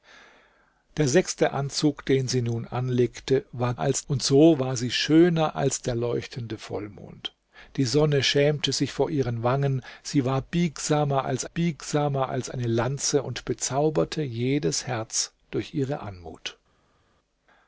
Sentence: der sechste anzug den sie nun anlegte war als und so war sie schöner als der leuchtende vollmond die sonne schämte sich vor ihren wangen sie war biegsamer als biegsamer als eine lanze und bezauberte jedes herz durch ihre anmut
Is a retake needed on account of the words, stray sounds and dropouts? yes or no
no